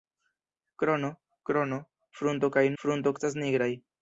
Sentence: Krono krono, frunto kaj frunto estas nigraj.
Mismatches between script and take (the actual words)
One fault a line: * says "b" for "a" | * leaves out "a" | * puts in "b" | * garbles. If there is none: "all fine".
all fine